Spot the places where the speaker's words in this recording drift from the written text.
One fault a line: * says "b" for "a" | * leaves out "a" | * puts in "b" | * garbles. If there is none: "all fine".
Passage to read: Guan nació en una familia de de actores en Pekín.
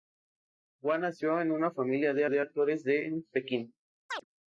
all fine